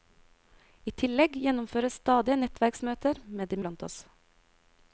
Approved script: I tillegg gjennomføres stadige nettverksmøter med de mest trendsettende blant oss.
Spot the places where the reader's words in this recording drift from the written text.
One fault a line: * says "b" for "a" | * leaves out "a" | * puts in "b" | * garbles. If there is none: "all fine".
* leaves out "mest trendsettende"